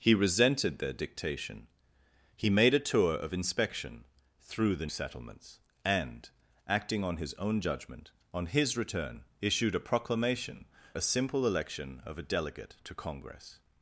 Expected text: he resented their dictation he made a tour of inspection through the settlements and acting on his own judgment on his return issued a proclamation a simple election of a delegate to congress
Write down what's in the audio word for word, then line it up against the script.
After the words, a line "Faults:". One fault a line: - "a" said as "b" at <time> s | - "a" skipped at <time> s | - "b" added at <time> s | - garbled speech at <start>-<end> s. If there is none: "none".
he resented their dictation he made a tour of inspection through the settlements and acting on his own judgment on his return issued a proclamation a simple election of a delegate to congress
Faults:
none